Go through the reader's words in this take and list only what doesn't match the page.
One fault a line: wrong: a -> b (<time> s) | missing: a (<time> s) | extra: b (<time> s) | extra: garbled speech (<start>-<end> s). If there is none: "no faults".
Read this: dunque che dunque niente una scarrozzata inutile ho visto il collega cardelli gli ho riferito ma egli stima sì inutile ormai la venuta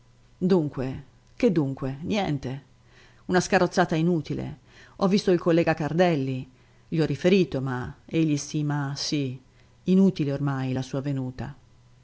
extra: sua (10.8 s)